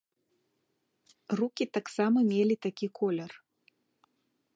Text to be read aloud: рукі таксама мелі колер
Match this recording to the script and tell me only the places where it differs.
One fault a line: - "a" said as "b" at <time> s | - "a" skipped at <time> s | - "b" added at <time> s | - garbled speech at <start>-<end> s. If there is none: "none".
- "такі" added at 2.5 s